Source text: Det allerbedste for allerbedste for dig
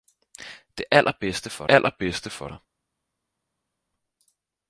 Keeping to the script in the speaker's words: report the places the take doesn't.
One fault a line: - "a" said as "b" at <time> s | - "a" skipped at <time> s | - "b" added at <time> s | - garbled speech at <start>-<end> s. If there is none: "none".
none